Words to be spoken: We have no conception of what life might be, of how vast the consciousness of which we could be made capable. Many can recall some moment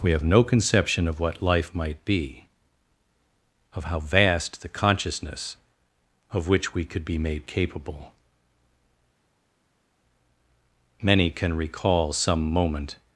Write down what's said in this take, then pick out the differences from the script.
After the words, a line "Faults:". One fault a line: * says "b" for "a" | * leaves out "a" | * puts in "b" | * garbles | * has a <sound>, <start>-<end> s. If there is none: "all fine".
We have no conception of what life might be, of how vast the consciousness of which we could be made capable. Many can recall some moment
Faults:
all fine